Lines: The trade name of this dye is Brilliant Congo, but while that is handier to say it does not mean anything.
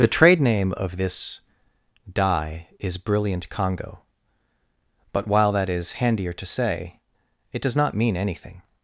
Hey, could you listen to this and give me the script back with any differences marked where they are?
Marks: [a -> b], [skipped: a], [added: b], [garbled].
The trade name of this dye is Brilliant Congo, but while that is handier to say it does not mean anything.